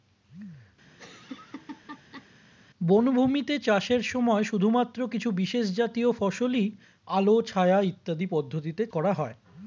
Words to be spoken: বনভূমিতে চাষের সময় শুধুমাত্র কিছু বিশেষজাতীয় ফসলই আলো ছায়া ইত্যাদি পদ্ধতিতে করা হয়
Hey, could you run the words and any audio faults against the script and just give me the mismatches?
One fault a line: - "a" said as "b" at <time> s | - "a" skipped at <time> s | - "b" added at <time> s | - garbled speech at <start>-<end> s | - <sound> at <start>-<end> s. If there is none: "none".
- laugh at 0.9-2.3 s